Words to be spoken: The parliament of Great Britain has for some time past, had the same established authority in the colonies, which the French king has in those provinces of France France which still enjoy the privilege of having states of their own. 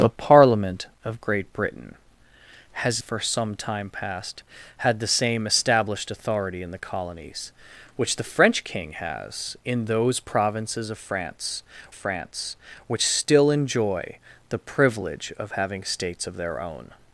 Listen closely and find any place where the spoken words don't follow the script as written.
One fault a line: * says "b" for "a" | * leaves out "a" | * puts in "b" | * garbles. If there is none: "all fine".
all fine